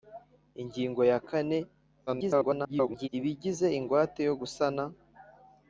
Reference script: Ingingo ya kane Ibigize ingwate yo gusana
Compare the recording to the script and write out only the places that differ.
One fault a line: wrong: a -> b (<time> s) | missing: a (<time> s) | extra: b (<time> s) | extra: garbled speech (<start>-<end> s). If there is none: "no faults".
extra: garbled speech (2.1-3.1 s)